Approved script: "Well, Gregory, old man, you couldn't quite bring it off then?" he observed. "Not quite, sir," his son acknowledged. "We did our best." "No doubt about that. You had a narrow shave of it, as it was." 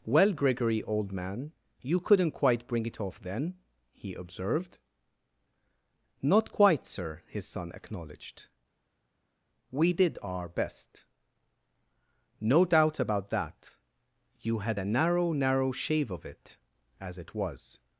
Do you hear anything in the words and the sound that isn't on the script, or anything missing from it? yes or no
yes